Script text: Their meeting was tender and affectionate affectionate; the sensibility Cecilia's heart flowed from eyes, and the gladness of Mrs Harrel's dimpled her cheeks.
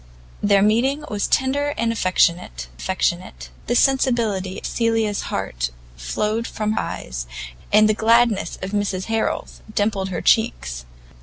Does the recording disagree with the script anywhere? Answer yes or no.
no